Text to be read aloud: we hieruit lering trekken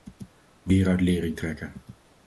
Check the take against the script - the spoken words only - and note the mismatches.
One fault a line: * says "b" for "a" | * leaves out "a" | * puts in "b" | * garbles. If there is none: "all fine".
all fine